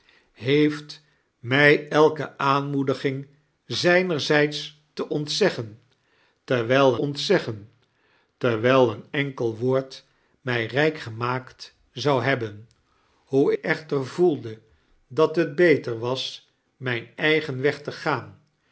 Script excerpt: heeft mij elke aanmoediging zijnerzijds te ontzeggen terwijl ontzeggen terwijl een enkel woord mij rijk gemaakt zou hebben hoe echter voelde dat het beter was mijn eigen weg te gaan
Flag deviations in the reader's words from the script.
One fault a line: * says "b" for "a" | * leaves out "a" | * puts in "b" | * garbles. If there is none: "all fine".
all fine